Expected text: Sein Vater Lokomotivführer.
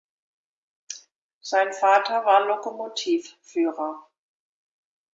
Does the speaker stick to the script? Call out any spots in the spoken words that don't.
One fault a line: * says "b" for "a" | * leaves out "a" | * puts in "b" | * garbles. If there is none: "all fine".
* puts in "war"